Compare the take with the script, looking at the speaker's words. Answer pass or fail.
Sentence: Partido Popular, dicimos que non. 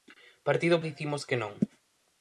fail